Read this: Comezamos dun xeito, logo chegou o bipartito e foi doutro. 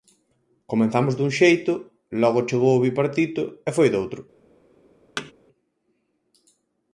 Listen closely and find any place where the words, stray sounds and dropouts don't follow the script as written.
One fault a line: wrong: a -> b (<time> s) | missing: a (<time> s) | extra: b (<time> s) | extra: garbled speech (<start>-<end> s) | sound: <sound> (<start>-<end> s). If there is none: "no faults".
sound: thud (5.2-5.3 s)